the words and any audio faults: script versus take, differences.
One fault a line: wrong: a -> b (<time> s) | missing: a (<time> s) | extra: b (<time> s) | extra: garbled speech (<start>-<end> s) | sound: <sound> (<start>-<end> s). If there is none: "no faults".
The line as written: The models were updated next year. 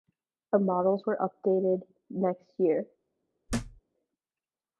sound: thud (3.5-3.8 s)